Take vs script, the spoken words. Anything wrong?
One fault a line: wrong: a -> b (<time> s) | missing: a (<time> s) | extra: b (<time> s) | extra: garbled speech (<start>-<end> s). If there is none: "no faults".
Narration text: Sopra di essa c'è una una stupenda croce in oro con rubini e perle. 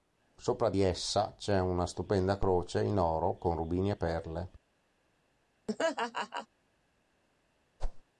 missing: una (1.8 s)